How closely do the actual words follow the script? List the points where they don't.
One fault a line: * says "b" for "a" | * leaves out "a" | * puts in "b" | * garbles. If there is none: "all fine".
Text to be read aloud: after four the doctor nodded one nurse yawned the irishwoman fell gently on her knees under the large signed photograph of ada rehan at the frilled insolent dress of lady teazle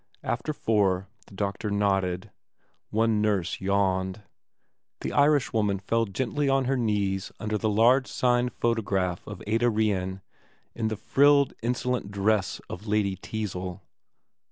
* says "in" for "at"